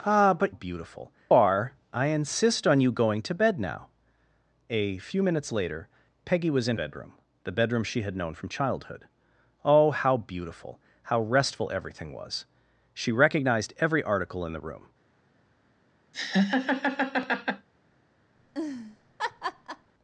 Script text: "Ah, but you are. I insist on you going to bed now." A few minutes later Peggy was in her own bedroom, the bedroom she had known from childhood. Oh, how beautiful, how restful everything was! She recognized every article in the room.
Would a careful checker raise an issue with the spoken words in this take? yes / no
yes